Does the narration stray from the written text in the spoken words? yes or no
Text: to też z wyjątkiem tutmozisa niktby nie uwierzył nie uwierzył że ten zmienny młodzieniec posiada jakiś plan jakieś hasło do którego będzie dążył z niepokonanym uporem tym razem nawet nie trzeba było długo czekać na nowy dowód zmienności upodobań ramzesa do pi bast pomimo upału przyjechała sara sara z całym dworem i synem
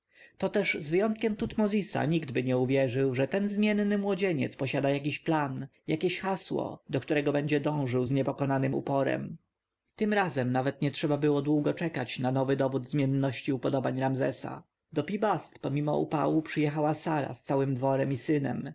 yes